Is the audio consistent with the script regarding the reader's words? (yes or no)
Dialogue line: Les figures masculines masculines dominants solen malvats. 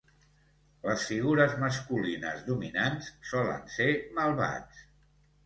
no